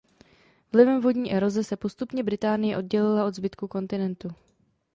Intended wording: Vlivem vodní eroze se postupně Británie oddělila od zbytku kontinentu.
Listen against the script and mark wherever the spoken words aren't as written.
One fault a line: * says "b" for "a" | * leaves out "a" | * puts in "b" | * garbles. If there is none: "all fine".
all fine